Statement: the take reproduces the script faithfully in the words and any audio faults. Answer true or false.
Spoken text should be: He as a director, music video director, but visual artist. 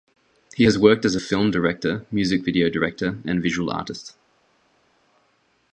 false